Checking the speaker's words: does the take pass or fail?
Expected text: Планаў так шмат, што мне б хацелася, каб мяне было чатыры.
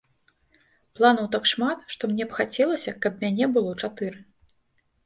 pass